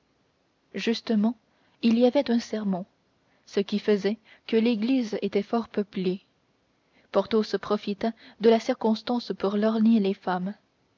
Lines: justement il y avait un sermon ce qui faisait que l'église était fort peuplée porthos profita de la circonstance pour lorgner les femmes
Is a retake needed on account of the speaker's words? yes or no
no